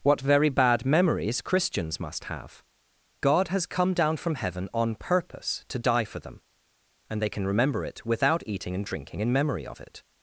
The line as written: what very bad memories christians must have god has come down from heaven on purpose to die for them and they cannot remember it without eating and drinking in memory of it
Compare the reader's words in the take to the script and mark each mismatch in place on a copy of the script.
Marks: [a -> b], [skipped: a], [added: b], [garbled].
what very bad memories christians must have god has come down from heaven on purpose to die for them and they [cannot -> can] remember it without eating and drinking in memory of it